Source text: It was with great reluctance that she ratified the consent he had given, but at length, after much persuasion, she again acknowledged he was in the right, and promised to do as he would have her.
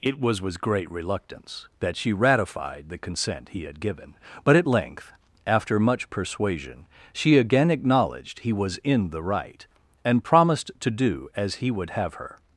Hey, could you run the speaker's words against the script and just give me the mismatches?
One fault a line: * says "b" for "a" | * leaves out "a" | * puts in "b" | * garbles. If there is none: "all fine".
all fine